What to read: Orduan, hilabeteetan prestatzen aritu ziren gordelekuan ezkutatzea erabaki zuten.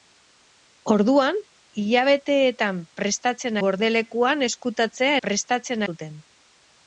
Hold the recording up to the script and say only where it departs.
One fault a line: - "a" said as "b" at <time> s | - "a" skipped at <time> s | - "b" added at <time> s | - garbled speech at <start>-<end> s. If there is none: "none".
- "aritu ziren" skipped at 3.6 s
- "erabaki" said as "prestatzen" at 5.3 s